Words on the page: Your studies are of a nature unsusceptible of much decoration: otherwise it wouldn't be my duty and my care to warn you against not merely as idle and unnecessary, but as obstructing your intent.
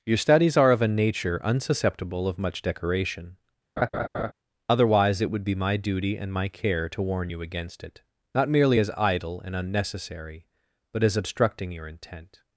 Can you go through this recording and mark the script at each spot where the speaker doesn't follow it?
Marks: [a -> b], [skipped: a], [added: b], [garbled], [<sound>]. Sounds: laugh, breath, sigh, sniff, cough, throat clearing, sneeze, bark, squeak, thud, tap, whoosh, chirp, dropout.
Your studies are of a nature unsusceptible of much decoration: [laugh] otherwise it [wouldn't -> would] be my duty and my care to warn you against [added: it] not merely as idle and unnecessary, but as obstructing your intent.